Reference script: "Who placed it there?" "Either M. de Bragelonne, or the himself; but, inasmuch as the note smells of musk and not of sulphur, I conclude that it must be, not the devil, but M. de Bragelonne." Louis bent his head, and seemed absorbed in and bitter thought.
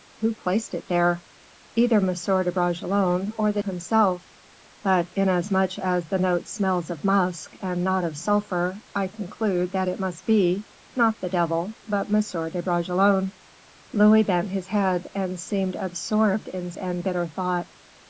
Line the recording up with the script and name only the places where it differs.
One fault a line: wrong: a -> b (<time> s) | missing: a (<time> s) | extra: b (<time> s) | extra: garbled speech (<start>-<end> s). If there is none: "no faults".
no faults